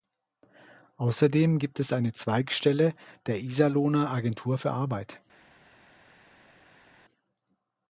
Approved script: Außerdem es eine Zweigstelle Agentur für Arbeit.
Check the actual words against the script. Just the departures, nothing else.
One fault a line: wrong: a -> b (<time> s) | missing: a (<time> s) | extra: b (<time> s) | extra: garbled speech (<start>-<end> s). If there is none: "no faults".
extra: gibt (1.6 s)
extra: der Iserlohner (3.3 s)